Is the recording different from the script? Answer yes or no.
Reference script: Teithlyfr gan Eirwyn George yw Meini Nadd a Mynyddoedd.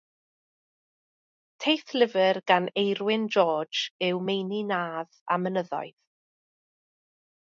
no